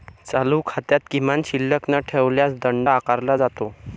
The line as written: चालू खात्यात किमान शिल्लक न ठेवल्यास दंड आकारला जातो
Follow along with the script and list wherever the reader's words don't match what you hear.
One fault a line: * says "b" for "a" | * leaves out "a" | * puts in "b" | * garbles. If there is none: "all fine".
all fine